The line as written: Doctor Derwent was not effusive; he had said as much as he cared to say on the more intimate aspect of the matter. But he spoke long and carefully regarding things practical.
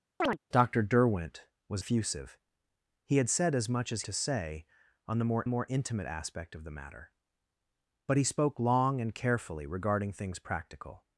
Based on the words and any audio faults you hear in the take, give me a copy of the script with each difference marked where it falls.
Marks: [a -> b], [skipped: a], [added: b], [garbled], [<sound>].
[chirp] Doctor Derwent was [skipped: not] effusive; he had said as much as [skipped: he cared] to say on the more [added: more] intimate aspect of the matter. But he spoke long and carefully regarding things practical.